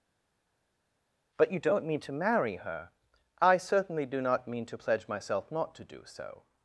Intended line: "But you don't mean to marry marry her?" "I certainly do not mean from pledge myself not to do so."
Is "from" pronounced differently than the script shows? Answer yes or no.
yes